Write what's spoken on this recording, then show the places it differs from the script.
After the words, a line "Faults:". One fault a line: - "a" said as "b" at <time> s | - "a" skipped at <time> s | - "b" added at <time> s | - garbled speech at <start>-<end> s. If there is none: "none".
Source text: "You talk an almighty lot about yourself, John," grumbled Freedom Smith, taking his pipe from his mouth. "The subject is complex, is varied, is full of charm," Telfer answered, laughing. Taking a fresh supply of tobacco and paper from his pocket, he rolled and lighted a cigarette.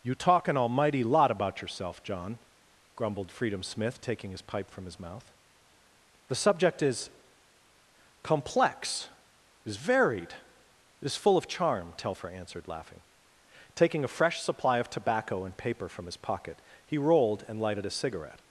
"You talk an almighty lot about yourself, John," grumbled Freedom Smith, taking his pipe from his mouth. "The subject is complex, is varied, is full of charm," Telfer answered, laughing. Taking a fresh supply of tobacco and paper from his pocket, he rolled and lighted a cigarette.
Faults:
none